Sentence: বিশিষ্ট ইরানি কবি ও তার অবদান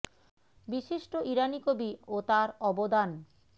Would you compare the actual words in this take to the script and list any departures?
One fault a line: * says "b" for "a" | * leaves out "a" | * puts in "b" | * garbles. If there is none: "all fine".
all fine